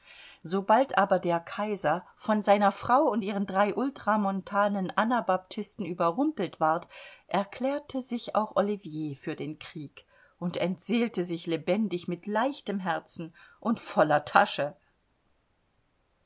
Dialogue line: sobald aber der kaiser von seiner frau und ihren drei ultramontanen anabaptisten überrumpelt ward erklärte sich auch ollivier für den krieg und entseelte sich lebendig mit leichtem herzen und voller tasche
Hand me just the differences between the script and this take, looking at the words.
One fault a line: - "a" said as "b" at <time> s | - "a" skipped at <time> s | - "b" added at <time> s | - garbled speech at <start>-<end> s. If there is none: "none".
none